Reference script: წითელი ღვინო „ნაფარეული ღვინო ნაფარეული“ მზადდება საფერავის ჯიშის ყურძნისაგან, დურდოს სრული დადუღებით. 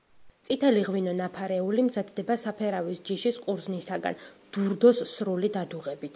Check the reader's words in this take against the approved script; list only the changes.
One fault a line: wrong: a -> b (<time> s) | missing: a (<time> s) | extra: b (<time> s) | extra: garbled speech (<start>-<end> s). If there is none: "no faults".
missing: ღვინო ნაფარეული (1.8 s)